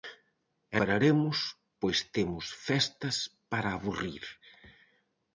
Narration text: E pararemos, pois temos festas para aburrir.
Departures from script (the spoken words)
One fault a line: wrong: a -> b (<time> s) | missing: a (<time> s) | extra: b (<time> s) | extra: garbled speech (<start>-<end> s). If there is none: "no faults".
no faults